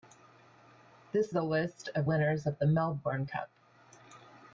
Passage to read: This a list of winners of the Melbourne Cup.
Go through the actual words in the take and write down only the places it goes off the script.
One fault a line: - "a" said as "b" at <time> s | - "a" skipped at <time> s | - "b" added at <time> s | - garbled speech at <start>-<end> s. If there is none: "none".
none